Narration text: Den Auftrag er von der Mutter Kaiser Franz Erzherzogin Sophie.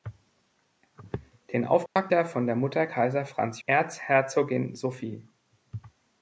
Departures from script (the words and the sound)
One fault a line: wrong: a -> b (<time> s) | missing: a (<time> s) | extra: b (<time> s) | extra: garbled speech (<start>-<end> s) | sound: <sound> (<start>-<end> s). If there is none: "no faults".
sound: dropout (1.9-2.0 s)